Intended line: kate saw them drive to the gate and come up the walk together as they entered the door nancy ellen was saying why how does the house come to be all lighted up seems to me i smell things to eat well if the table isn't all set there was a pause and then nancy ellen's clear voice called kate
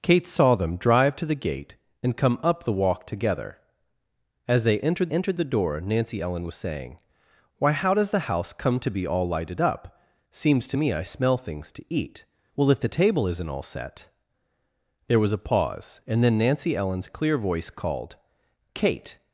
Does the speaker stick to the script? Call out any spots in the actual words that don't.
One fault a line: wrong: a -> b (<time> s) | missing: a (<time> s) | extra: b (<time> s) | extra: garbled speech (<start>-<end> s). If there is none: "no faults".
extra: entered (5.1 s)